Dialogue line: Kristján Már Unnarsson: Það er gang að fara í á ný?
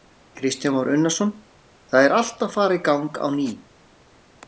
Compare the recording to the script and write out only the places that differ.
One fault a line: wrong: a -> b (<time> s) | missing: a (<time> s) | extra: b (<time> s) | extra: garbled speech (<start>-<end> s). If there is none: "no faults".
wrong: gang -> allt (2.2 s)
extra: gang (2.9 s)